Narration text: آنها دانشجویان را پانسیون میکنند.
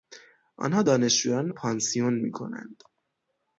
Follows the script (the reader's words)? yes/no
no